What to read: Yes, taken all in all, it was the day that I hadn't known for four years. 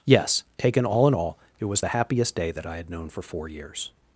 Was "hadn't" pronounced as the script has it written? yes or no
no